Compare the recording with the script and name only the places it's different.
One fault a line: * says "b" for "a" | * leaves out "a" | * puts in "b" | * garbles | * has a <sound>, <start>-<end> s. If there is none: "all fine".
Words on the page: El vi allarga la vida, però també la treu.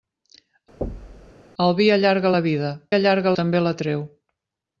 * has a thud, 0.8-1.3 s
* says "allarga" for "però"